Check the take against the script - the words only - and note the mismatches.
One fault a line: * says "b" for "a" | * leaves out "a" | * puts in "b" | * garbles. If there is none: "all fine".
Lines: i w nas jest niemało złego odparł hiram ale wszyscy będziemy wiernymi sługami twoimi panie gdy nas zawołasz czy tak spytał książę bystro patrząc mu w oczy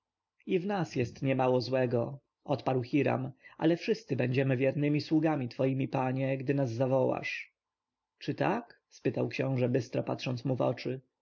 all fine